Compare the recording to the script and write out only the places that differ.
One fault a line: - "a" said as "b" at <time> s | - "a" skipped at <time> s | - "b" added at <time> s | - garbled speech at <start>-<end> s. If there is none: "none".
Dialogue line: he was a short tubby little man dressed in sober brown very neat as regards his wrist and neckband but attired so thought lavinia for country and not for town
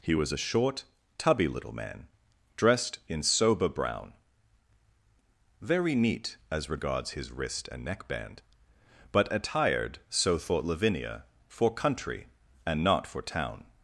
none